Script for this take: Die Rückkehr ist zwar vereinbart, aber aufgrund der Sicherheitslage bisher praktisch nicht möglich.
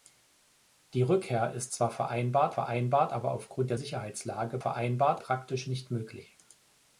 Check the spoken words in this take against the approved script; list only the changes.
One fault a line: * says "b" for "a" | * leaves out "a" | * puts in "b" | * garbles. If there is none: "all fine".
* puts in "vereinbart"
* says "vereinbart" for "bisher"